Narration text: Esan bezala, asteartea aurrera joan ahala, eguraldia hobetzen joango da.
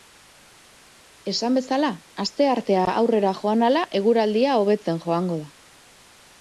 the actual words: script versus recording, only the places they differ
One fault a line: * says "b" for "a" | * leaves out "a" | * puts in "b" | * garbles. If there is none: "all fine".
all fine